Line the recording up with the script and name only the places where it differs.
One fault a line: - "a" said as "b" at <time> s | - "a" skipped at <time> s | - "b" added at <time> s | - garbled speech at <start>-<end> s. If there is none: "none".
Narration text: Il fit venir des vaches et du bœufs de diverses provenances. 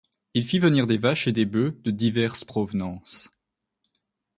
- "du" said as "des" at 1.3 s